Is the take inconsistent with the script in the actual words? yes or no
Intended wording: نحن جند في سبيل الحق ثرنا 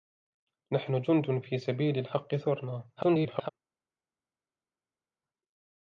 yes